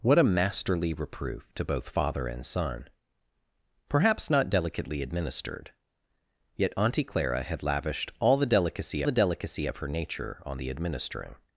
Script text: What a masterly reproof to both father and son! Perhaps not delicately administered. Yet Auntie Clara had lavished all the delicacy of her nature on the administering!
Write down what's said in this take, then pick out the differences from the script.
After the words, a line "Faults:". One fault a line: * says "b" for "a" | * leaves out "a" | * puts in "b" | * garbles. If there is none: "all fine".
What a masterly reproof to both father and son! Perhaps not delicately administered. Yet Auntie Clara had lavished all the delicacy the delicacy of her nature on the administering!
Faults:
* puts in "the delicacy"